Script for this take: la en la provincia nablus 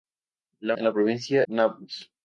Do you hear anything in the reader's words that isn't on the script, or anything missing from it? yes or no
no